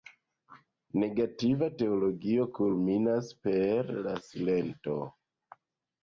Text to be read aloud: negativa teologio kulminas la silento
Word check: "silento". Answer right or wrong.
right